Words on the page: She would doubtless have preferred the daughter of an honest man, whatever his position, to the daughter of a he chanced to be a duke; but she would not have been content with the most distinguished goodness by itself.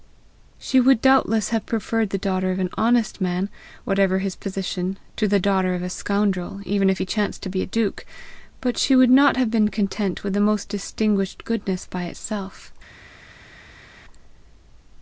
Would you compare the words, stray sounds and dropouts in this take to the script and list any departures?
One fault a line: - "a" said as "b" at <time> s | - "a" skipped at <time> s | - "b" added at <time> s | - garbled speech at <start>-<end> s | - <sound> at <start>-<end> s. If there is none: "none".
- "scoundrel even if" added at 5.9 s